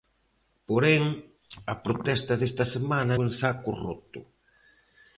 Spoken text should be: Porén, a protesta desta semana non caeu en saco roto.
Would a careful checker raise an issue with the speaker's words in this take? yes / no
yes